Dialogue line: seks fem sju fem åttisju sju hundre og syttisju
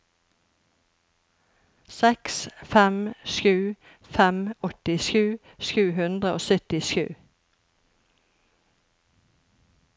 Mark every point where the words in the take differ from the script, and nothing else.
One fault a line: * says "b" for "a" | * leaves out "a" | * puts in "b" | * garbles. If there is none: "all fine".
all fine